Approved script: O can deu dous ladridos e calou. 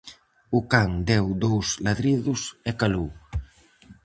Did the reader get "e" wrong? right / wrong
right